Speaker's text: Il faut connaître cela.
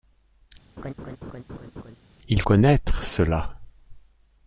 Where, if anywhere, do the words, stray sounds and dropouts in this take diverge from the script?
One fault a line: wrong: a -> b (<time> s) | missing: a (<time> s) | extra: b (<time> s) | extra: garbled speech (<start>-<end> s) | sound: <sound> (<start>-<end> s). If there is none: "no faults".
sound: laugh (0.8-2.0 s)
missing: faut (2.4 s)